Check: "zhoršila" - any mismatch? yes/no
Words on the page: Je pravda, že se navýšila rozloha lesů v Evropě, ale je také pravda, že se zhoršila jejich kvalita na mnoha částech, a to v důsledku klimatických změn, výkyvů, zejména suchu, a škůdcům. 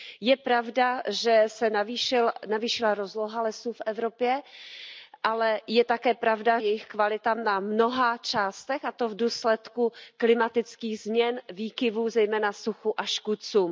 yes